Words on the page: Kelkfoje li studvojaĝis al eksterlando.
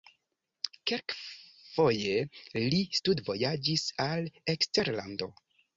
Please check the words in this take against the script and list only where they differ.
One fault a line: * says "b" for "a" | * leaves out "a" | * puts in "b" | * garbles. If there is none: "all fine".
all fine